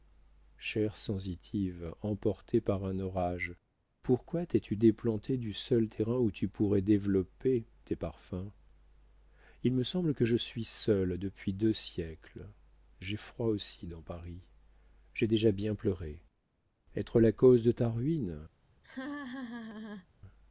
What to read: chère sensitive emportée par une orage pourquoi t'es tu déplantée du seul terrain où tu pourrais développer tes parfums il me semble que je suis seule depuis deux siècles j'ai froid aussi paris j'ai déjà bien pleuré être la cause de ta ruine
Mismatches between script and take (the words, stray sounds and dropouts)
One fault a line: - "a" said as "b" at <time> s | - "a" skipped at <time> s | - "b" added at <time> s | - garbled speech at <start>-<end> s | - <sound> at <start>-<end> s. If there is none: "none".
- "une" said as "un" at 2.9 s
- "dans" added at 13.9 s
- laugh at 18.8-20.1 s